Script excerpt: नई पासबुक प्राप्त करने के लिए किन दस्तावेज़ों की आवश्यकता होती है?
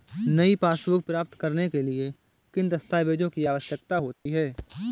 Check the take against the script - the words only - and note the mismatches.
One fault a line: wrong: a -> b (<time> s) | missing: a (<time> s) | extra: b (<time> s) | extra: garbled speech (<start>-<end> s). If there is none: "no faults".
no faults